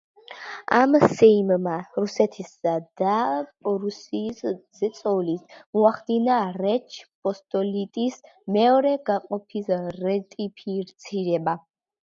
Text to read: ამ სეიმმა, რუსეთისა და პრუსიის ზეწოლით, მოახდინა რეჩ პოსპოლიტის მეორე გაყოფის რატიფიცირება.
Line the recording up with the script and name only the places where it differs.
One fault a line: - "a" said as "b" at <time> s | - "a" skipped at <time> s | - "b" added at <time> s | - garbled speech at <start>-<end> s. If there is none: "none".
none